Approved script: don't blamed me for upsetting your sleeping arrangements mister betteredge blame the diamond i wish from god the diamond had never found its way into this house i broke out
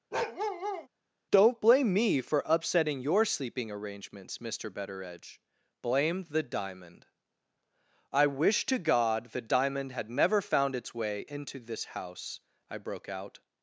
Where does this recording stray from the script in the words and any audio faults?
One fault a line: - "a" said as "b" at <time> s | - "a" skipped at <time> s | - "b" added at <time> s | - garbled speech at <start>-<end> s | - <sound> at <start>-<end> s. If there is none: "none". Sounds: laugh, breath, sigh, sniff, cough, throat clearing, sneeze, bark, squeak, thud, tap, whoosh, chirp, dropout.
- bark at 0.1-0.9 s
- "blamed" said as "blame" at 1.6 s
- "from" said as "to" at 8.6 s